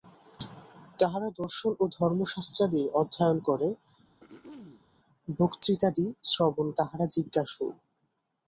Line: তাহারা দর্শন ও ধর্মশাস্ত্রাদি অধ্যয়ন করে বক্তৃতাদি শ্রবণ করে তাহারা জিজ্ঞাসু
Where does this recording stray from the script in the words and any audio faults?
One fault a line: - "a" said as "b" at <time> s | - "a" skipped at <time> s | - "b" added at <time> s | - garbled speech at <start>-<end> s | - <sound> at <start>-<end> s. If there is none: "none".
- throat clearing at 4.2-4.9 s
- "করে" skipped at 6.7 s